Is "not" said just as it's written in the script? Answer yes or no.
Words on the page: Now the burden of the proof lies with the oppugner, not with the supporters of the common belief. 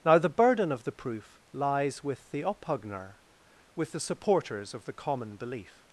no